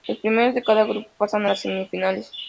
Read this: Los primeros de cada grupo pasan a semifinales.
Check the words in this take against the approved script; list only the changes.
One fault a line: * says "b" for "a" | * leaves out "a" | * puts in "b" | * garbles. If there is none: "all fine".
* puts in "las"